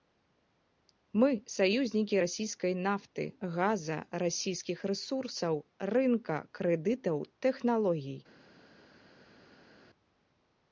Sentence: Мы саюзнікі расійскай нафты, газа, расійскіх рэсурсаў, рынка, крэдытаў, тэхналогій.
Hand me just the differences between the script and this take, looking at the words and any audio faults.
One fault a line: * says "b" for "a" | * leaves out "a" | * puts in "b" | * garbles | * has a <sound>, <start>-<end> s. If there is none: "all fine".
all fine